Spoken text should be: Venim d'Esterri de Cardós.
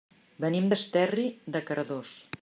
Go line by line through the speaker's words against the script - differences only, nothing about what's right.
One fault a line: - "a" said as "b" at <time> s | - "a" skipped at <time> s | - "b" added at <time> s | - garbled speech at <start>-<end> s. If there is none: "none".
none